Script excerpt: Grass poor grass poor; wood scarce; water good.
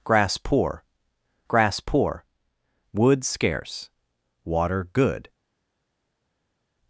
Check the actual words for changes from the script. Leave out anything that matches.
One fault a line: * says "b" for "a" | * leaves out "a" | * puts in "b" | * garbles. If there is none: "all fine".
all fine